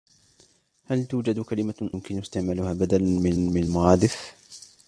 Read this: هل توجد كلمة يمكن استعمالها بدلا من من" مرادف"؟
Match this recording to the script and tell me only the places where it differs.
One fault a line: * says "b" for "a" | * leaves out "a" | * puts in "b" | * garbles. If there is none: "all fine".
all fine